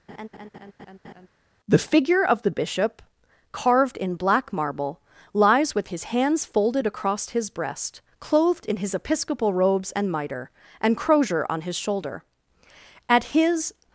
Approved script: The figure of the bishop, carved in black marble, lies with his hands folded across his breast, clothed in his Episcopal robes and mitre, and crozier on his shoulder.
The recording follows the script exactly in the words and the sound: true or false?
false